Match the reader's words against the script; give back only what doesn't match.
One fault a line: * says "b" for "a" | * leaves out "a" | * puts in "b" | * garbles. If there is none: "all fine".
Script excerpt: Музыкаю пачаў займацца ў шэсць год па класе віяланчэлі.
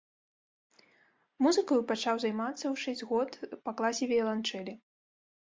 all fine